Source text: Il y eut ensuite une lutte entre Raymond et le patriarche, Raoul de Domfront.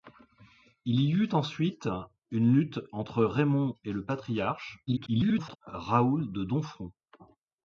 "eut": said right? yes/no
yes